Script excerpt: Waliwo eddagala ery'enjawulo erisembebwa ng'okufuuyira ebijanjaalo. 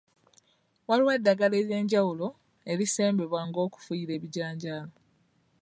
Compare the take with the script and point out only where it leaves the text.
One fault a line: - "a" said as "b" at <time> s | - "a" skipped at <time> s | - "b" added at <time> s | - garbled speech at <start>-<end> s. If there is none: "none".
none